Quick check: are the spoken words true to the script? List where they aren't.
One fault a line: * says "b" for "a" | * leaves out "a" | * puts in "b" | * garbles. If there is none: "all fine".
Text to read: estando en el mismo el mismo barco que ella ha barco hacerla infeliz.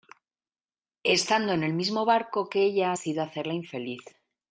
* leaves out "el mismo"
* says "sido" for "barco"